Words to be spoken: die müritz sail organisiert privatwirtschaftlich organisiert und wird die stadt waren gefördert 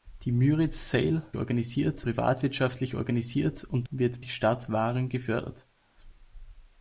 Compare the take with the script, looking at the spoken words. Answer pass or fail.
pass